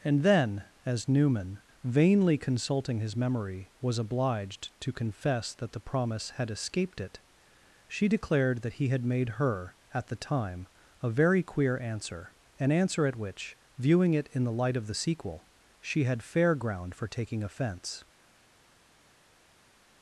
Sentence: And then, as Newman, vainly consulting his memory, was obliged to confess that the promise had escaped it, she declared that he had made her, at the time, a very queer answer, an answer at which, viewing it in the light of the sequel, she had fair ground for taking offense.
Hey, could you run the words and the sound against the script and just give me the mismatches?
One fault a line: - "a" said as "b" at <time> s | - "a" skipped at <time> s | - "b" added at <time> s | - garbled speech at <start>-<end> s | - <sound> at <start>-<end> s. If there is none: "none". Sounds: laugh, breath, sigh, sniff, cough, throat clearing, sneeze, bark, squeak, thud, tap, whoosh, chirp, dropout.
none